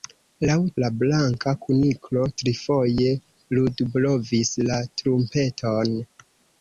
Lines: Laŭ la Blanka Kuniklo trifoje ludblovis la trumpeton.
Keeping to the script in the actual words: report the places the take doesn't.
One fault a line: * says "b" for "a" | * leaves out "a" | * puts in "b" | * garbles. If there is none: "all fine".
all fine